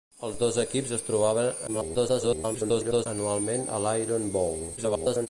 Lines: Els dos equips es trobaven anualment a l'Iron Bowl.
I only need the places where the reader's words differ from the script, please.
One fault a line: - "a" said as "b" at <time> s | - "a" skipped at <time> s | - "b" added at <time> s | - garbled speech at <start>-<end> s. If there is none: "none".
- garbled speech at 1.7-3.1 s
- garbled speech at 4.8-5.3 s